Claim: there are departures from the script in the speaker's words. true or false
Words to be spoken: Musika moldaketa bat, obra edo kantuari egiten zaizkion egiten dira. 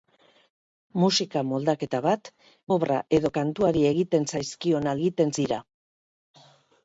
false